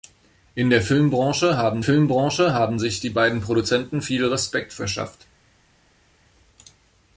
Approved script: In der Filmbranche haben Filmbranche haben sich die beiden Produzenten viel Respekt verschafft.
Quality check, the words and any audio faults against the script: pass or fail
pass